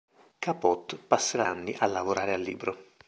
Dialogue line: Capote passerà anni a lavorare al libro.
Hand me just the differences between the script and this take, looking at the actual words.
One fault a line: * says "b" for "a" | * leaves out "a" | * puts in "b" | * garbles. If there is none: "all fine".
all fine